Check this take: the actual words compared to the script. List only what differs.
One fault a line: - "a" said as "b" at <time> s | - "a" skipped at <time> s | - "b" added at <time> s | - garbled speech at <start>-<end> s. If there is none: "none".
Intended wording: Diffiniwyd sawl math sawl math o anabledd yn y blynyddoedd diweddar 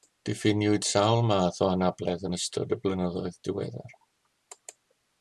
- "sawl math" skipped at 1.6 s
- "ystod" added at 2.4 s